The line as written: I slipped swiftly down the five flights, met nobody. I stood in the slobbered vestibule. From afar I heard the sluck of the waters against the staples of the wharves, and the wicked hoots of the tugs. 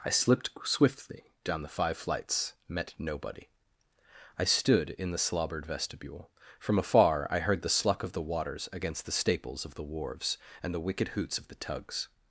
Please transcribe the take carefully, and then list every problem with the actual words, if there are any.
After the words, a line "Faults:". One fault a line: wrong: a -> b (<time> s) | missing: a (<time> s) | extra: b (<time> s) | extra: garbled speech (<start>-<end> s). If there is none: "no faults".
I slipped swiftly down the five flights, met nobody. I stood in the slobbered vestibule. From afar I heard the sluck of the waters against the staples of the wharves, and the wicked hoots of the tugs.
Faults:
no faults